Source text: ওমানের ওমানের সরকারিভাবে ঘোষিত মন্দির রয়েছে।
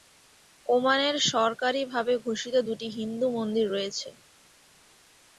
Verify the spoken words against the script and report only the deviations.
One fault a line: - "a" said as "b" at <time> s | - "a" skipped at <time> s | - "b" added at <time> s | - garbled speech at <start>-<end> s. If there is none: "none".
- "ওমানের" skipped at 1.1 s
- "দুটি হিন্দু" added at 2.7 s